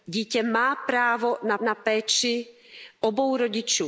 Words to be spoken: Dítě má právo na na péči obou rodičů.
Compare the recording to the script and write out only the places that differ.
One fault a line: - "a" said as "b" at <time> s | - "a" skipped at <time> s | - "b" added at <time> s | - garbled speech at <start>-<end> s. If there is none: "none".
none